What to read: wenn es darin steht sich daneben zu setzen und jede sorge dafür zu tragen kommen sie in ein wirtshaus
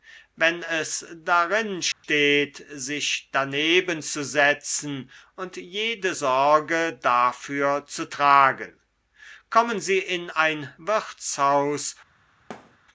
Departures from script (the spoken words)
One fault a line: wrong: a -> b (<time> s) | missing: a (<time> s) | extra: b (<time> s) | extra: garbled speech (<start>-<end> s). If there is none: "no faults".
no faults